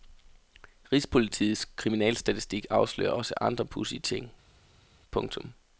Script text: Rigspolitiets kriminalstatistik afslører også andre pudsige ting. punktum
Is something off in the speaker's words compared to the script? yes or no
no